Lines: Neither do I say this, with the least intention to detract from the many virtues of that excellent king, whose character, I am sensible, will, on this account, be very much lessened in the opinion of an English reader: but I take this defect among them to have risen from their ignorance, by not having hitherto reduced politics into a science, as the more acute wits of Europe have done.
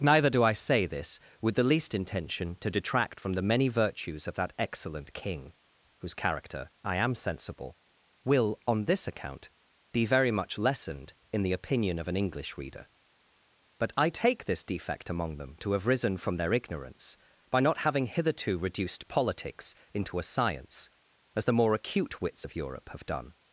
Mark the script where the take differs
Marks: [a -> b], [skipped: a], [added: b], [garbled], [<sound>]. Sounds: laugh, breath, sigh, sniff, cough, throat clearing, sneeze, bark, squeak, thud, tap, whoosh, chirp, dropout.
Neither do I say this, with the least intention to detract from the many virtues of that excellent king, whose character, I am sensible, will, on this account, be very much lessened in the opinion of an English reader: but I take this defect among them to have risen from their ignorance, by not having hitherto reduced politics into a science, as the more acute wits of Europe have done.